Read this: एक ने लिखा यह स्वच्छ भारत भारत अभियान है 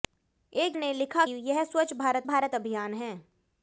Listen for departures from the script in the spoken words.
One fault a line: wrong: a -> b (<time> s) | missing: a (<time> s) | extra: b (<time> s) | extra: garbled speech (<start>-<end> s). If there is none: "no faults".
no faults